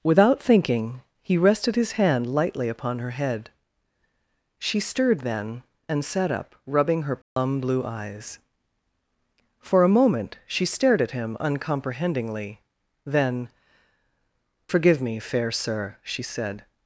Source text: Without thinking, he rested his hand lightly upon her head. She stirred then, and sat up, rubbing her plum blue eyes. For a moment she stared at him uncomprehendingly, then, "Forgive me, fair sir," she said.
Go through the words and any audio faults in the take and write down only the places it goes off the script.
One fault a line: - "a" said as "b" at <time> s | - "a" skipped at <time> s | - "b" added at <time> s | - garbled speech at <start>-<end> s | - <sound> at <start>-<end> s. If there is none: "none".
- dropout at 7.2-7.4 s